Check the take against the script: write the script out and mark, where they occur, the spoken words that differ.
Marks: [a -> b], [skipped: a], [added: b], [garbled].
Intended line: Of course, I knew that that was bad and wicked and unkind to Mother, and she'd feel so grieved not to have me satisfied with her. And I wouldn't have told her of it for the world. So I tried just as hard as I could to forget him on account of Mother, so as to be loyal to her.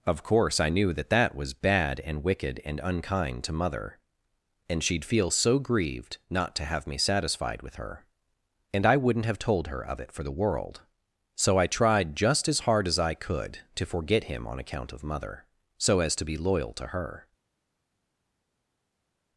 Of course, I knew that that was bad and wicked and unkind to Mother, and she'd feel so grieved not to have me satisfied with her. And I wouldn't have told her of it for the world. So I tried just as hard as I could to forget him on account of Mother, so as to be loyal to her.